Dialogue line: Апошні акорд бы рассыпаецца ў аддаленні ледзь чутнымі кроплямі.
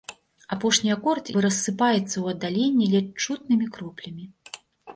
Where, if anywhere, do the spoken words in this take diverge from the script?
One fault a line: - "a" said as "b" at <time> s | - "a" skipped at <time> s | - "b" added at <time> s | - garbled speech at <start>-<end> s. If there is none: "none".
none